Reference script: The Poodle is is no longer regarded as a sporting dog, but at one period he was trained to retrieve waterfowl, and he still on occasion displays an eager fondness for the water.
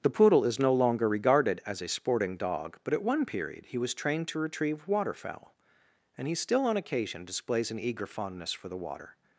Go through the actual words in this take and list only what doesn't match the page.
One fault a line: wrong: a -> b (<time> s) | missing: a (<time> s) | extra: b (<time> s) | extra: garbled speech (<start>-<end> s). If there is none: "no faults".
missing: is (0.6 s)